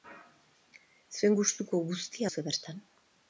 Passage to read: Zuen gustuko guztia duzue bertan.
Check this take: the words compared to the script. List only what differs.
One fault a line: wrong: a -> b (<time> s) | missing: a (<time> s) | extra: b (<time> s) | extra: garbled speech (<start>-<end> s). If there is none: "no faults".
no faults